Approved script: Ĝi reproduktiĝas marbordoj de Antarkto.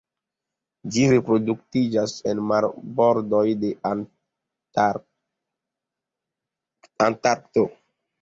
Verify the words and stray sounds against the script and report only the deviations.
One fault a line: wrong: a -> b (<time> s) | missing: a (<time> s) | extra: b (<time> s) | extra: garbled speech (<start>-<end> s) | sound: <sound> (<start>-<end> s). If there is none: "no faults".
extra: en (2.3 s)